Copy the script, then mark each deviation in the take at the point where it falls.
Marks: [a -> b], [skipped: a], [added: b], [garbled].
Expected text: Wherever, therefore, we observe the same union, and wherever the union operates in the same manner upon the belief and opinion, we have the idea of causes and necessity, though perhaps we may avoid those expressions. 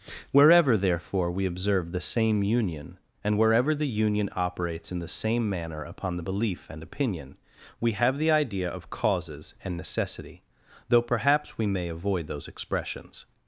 Wherever, therefore, we observe the same union, and wherever the union operates in the same manner upon the belief and opinion, we have the idea of causes and necessity, though perhaps we may avoid those expressions.